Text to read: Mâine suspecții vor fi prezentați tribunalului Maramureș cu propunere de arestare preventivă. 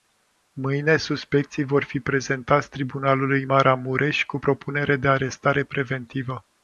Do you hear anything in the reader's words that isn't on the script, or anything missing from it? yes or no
no